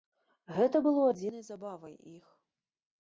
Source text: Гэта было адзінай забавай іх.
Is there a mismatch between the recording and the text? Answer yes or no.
no